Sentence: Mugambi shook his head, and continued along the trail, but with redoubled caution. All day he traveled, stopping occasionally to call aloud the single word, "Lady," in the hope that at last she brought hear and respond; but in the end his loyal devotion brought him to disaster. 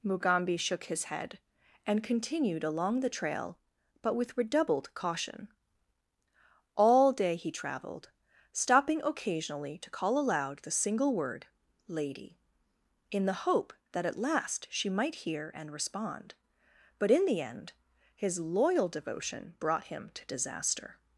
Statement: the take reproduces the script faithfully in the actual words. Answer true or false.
false